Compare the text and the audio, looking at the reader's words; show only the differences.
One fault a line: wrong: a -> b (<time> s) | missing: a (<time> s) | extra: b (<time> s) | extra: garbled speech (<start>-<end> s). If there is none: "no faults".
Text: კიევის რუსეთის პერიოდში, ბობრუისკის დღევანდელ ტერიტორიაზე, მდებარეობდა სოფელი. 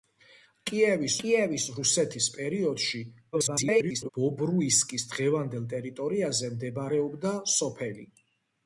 extra: კიევის (1.2 s)
extra: garbled speech (3.3-4.1 s)